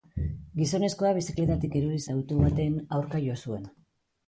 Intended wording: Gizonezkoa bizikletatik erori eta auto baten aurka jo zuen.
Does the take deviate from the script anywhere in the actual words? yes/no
no